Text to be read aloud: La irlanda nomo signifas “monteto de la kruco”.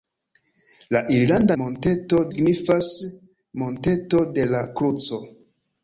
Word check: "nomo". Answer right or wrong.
wrong